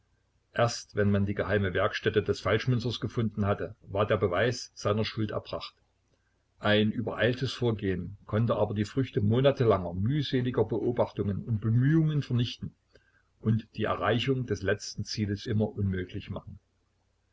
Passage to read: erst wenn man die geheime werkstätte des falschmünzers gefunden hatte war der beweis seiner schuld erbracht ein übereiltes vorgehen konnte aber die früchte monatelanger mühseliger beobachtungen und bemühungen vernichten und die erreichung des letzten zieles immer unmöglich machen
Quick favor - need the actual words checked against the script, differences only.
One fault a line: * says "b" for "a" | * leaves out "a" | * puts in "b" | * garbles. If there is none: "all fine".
all fine